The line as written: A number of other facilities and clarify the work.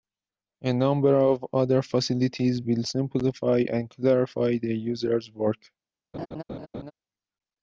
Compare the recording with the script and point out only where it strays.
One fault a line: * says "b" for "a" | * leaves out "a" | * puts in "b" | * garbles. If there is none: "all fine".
* puts in "will simplify"
* puts in "user's"